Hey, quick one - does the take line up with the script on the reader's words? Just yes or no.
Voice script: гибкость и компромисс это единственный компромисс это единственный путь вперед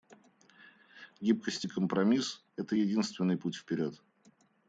no